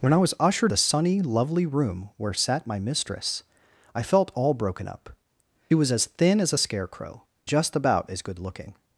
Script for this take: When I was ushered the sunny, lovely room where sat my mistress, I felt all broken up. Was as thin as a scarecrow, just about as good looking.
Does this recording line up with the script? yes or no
yes